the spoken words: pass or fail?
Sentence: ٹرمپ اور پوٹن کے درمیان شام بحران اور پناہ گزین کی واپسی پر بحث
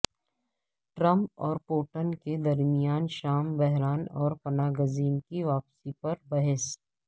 pass